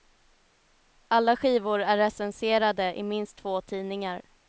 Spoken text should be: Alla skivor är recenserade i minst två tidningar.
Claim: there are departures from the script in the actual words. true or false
false